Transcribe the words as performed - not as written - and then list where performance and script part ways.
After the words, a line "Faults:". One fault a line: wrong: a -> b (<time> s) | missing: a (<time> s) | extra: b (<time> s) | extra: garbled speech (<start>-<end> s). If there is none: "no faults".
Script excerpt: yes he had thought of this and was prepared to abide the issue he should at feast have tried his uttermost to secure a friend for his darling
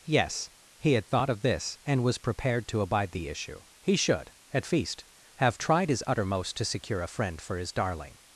yes he had thought of this and was prepared to abide the issue he should at feast have tried his uttermost to secure a friend for his darling
Faults:
no faults